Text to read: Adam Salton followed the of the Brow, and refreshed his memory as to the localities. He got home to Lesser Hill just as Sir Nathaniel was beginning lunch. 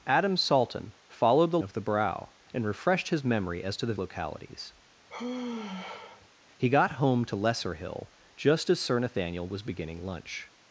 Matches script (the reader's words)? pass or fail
pass